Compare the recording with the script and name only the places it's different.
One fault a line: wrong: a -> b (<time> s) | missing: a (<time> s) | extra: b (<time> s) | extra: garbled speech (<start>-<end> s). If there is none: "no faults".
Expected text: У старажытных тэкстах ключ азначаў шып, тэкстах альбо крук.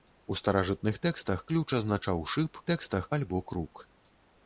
no faults